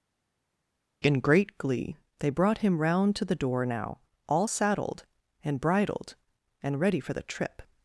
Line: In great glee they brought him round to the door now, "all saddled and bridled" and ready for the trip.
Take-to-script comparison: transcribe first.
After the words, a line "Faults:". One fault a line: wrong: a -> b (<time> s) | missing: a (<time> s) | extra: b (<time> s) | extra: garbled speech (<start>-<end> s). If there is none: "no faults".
In great glee they brought him round to the door now, "all saddled and bridled" and ready for the trip.
Faults:
no faults